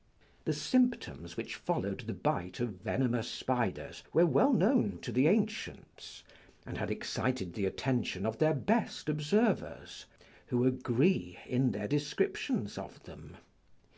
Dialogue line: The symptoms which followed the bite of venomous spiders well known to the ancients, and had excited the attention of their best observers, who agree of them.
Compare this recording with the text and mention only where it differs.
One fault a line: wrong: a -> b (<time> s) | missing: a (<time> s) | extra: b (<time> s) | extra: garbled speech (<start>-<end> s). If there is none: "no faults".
extra: were (4.1 s)
extra: in their descriptions (11.4 s)